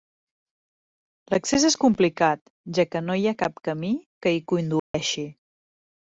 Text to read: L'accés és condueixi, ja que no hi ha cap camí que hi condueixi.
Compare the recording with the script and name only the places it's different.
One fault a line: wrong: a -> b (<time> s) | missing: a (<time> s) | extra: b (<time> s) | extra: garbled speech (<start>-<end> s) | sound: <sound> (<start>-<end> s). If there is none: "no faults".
wrong: condueixi -> complicat (1.8 s)
sound: dropout (4.8-4.9 s)